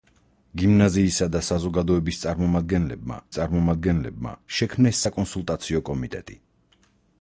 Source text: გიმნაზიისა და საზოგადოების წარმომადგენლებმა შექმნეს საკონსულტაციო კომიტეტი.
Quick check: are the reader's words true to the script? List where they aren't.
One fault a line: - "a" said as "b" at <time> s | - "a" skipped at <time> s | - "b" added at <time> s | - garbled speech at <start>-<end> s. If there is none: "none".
- "წარმომადგენლებმა" added at 3.4 s